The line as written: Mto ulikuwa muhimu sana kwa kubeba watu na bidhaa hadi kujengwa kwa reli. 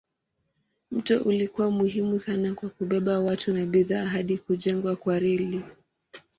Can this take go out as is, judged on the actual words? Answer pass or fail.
pass